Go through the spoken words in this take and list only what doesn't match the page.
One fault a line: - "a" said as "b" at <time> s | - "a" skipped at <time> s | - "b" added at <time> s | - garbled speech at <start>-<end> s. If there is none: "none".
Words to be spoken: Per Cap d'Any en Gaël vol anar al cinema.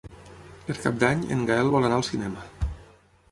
none